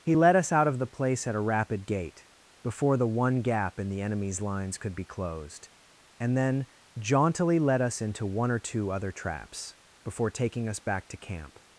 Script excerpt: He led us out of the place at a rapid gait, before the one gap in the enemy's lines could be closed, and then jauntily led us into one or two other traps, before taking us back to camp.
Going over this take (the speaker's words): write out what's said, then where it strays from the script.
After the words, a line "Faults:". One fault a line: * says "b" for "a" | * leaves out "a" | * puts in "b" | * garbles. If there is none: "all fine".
He led us out of the place at a rapid gait, before the one gap in the enemy's lines could be closed, and then jauntily led us into one or two other traps, before taking us back to camp.
Faults:
all fine